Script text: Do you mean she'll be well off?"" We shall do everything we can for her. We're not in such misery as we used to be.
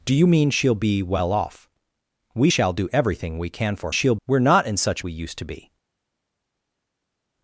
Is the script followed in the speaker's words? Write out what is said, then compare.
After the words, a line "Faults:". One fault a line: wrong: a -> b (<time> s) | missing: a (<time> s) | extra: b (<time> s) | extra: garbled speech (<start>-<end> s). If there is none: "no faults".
Do you mean she'll be well off?"" We shall do everything we can for she'll. We're not in such we used to be.
Faults:
wrong: her -> she'll (3.9 s)
missing: misery as (5.0 s)